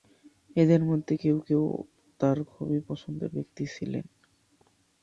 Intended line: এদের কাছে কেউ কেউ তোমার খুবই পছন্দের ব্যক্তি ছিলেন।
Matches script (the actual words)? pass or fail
fail